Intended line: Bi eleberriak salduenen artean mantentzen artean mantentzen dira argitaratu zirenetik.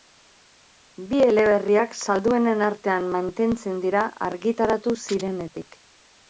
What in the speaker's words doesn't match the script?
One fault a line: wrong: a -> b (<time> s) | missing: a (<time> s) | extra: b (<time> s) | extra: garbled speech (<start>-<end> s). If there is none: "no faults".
missing: artean mantentzen (3.8 s)